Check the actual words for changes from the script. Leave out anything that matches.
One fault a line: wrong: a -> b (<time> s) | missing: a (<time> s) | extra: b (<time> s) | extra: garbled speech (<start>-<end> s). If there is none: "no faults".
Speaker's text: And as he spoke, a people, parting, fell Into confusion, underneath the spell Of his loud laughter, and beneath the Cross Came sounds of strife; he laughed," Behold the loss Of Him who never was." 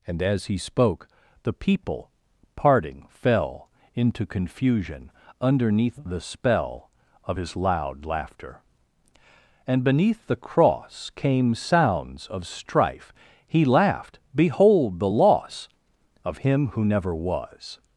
wrong: a -> the (1.4 s)